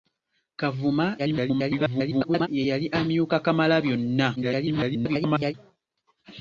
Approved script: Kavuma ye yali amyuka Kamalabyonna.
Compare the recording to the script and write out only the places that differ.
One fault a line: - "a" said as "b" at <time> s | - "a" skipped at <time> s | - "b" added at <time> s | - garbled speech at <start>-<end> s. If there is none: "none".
- garbled speech at 1.2-2.5 s
- garbled speech at 4.4-5.5 s